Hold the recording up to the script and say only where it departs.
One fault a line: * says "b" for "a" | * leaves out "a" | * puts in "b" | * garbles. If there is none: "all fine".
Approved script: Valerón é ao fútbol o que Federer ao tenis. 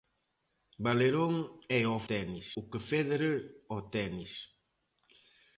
* says "tenis" for "fútbol"